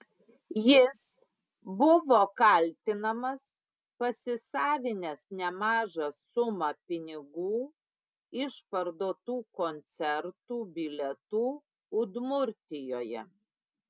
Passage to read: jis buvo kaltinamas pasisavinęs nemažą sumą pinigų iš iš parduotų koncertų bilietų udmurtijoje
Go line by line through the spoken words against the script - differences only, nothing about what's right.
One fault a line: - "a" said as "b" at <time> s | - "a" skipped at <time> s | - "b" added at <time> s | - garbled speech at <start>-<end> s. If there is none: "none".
- "iš" skipped at 8.6 s